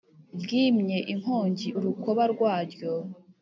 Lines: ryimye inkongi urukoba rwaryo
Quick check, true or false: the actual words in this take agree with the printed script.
true